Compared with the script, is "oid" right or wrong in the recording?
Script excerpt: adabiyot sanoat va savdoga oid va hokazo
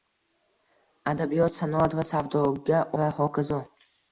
wrong